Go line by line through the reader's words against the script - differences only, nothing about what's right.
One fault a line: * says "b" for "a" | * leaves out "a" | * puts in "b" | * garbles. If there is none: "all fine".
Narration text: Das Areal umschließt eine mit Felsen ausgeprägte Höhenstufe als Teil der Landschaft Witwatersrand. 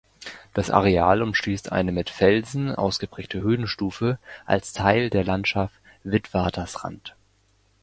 all fine